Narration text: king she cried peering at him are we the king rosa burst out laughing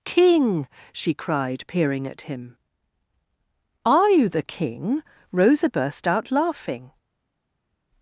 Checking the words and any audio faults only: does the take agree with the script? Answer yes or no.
no